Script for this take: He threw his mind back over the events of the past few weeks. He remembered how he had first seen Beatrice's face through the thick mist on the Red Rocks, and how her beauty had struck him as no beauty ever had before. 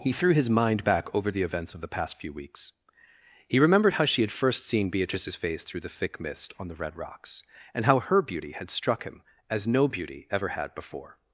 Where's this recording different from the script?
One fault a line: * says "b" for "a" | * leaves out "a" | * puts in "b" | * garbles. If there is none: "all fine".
* says "she" for "he"